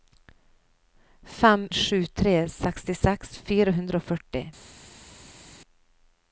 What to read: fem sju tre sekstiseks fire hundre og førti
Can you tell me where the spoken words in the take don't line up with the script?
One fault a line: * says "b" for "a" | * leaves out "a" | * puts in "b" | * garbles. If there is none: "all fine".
all fine